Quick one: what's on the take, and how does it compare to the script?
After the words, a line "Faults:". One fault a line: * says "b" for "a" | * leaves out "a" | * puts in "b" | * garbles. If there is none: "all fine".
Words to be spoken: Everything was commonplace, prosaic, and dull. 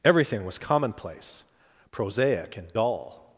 Everything was commonplace, prosaic, and dull.
Faults:
all fine